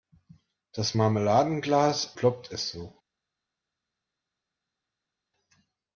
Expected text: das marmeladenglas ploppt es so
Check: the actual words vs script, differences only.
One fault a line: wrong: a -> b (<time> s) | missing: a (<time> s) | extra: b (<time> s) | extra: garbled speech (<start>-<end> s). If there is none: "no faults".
no faults